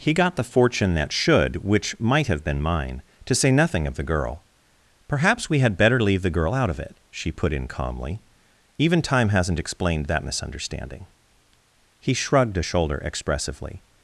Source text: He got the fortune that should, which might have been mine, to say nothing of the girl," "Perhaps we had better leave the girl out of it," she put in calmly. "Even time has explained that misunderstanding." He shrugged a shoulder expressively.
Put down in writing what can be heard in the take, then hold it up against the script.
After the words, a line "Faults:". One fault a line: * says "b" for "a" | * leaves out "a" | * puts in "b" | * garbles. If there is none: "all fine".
He got the fortune that should, which might have been mine, to say nothing of the girl," "Perhaps we had better leave the girl out of it," she put in calmly. "Even time hasn't explained that misunderstanding." He shrugged a shoulder expressively.
Faults:
* says "hasn't" for "has"